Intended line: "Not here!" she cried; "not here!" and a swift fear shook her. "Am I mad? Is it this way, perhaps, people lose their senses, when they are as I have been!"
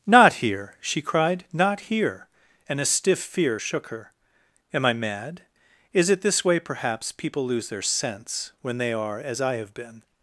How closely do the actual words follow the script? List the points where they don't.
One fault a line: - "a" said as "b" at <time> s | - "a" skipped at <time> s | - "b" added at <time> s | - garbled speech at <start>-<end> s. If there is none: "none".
- "swift" said as "stiff" at 2.9 s
- "senses" said as "sense" at 7.8 s